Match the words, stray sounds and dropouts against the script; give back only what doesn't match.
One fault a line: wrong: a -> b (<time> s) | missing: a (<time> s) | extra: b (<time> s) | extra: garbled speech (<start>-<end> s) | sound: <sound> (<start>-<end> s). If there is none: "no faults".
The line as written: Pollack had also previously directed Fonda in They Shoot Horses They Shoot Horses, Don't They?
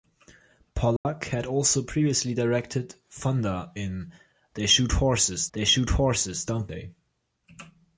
sound: dropout (1.0-1.1 s)